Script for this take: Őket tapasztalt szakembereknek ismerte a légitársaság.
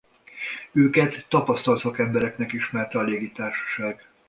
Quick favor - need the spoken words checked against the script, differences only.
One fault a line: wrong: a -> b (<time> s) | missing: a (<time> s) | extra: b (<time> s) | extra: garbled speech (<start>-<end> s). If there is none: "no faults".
no faults